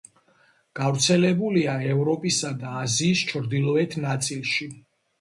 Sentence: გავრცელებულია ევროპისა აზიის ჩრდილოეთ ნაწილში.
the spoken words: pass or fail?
fail